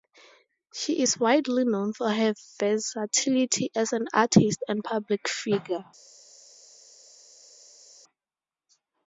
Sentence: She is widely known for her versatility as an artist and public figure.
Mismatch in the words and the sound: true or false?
false